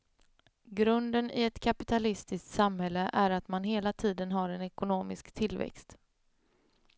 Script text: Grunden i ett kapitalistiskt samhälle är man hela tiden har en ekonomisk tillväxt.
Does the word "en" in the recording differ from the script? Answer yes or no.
no